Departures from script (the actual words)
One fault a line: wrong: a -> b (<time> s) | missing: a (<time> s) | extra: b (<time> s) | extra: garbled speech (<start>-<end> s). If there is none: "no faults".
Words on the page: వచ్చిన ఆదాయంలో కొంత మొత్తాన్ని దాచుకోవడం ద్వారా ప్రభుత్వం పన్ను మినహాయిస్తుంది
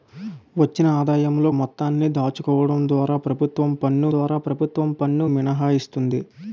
missing: కొంత (1.5 s)
extra: ద్వారా ప్రభుత్వం పన్ను (4.1 s)